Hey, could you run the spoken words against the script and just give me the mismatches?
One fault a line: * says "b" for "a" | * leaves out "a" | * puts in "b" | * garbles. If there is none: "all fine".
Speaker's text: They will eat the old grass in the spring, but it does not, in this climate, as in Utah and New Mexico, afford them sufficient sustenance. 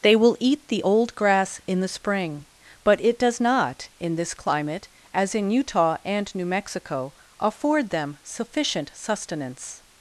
all fine